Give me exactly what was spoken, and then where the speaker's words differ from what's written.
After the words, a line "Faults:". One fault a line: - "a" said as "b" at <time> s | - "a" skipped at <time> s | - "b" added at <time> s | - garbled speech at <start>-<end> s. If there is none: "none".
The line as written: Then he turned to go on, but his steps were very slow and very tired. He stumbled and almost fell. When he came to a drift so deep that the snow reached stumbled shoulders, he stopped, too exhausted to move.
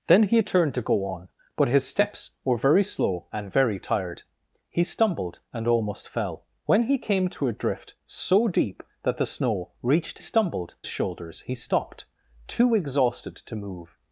Then he turned to go on, but his steps were very slow and very tired. He stumbled and almost fell. When he came to a drift so deep that the snow reached stumbled shoulders, he stopped, too exhausted to move.
Faults:
none